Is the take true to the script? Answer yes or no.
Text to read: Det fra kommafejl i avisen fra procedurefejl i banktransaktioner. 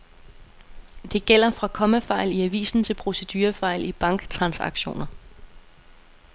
no